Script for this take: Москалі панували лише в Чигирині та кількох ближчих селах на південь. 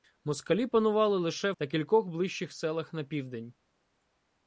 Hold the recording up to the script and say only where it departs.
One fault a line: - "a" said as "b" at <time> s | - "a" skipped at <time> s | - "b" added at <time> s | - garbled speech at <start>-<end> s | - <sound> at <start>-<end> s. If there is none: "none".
- "в Чигирині" skipped at 1.5 s